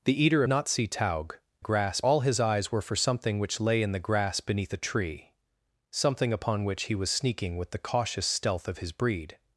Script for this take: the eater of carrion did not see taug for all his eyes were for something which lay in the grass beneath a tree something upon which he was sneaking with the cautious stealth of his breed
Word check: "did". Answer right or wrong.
wrong